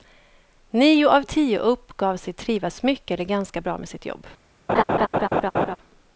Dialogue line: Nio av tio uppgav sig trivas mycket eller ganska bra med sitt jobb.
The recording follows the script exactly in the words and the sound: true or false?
false